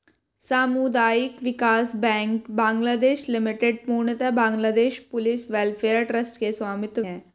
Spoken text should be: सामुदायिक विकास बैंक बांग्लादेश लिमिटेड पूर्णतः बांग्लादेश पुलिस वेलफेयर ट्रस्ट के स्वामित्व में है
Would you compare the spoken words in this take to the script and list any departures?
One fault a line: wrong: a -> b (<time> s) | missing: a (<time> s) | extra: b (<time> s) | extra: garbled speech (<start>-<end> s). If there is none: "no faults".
missing: में (7.0 s)